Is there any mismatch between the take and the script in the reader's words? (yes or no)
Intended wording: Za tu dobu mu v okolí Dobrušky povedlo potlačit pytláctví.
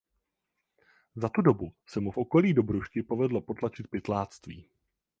yes